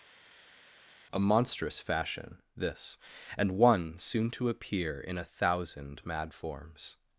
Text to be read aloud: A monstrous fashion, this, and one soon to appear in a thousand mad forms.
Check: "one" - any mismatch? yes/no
no